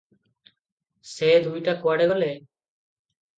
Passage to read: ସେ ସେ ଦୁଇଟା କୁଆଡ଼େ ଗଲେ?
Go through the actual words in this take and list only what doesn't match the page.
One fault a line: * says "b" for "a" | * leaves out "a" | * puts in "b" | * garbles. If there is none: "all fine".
* leaves out "ସେ"